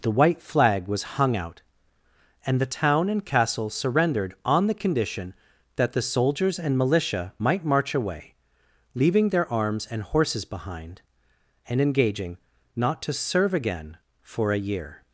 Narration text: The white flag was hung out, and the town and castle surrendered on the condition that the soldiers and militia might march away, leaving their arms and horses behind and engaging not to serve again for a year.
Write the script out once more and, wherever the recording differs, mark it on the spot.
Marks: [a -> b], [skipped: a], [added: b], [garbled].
The white flag was hung out, and the town and castle surrendered on the condition that the soldiers and militia might march away, leaving their arms and horses behind and engaging not to serve again for a year.